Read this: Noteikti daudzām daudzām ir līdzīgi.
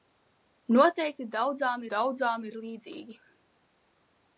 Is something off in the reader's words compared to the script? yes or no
no